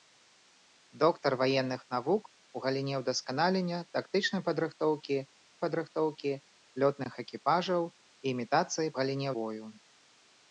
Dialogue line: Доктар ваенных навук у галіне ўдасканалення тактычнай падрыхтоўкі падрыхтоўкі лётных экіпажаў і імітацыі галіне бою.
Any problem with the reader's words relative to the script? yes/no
no